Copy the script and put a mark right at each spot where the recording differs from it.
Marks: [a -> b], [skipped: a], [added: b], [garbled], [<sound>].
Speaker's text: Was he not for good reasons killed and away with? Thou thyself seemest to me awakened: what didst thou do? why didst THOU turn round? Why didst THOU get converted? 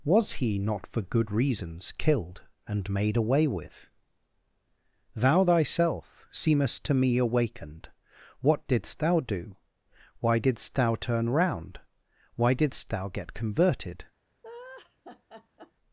Was he not for good reasons killed and [added: made] away with? Thou thyself seemest to me awakened: what didst thou do? why didst THOU turn round? Why didst THOU get converted? [laugh]